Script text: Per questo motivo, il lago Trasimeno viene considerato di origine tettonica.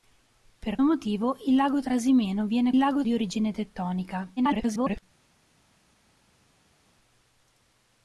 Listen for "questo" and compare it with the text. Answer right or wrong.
wrong